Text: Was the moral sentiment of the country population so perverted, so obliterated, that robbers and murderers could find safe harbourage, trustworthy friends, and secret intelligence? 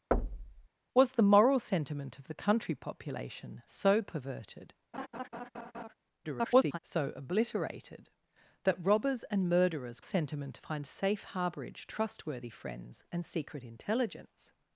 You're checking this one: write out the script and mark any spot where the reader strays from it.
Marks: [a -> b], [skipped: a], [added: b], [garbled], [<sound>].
[thud] Was the moral sentiment of the country population so perverted, [laugh] [garbled] so obliterated, that robbers and murderers [could -> sentiment] find safe harbourage, trustworthy friends, and secret intelligence?